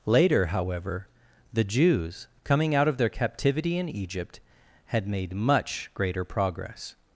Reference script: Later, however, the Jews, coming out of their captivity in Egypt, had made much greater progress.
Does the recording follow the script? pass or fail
pass